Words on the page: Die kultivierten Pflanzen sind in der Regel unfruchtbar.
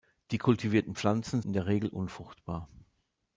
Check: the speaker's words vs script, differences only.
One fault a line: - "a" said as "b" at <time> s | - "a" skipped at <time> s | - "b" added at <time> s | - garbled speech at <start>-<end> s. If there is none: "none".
- "sind" skipped at 1.4 s